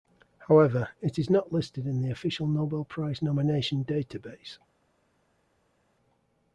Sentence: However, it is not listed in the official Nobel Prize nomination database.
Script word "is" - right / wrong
right